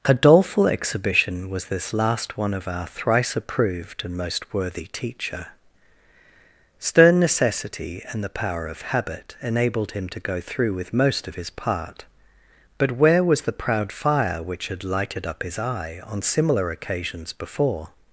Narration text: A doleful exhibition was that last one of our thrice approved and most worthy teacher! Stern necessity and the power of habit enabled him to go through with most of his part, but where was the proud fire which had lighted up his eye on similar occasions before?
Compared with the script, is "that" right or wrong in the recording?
wrong